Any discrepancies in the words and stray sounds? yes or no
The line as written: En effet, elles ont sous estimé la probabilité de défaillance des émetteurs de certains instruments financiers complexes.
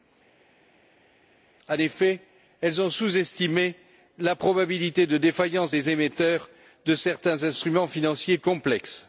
no